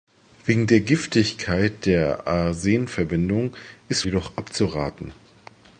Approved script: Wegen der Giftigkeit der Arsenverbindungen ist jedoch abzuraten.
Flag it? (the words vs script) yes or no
no